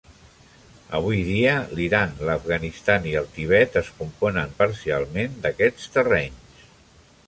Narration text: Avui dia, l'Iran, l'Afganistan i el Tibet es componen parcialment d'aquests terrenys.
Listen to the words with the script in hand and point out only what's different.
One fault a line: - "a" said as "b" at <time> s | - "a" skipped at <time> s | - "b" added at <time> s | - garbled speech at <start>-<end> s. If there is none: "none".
none